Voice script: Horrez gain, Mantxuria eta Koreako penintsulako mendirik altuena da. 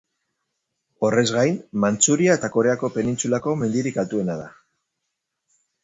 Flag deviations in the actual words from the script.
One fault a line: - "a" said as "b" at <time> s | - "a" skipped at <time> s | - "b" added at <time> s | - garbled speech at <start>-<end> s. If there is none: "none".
none